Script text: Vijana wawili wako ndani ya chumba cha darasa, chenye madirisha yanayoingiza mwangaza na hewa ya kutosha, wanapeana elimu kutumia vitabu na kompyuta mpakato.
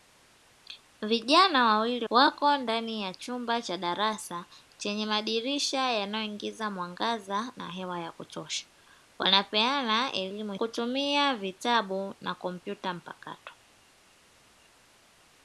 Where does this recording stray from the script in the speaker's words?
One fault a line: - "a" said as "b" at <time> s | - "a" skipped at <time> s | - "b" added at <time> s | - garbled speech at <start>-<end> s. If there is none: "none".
none